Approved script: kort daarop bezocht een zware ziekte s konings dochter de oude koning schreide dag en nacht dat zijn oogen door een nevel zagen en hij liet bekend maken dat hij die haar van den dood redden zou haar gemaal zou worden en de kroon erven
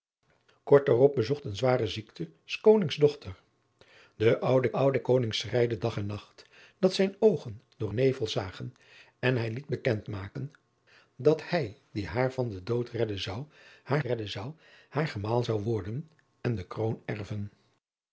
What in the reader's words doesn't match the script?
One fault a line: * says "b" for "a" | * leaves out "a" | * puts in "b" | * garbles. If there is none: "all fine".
* puts in "oude"
* leaves out "een"
* puts in "redden zou haar"